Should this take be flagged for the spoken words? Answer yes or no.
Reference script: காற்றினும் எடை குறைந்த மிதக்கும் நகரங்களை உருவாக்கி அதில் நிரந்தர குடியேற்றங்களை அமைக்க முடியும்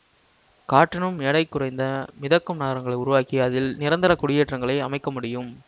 no